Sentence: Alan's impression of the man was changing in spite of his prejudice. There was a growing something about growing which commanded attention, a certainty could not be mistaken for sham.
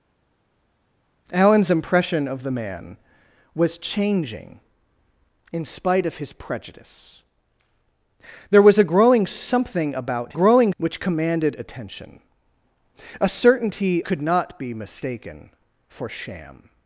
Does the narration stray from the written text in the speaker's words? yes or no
no